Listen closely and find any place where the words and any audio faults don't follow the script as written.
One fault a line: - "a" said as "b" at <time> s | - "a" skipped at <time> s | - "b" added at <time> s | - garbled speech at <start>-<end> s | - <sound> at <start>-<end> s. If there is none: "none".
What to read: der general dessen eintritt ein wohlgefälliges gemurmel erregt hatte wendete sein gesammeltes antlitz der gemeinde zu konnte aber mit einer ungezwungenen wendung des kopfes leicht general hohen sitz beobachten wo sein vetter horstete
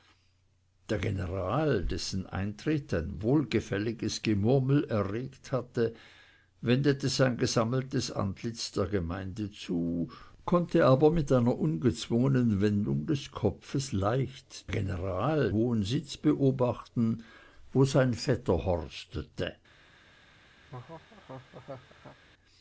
- laugh at 20.6-22.2 s